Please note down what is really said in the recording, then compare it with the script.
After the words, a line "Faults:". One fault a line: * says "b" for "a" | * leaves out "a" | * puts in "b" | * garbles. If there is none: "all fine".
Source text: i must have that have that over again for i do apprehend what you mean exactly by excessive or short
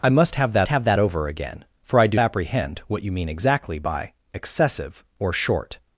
i must have that have that over again for i do apprehend what you mean exactly by excessive or short
Faults:
all fine